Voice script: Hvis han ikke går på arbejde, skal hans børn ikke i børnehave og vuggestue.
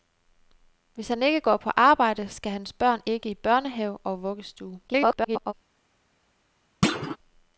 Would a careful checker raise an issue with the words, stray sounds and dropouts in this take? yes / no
yes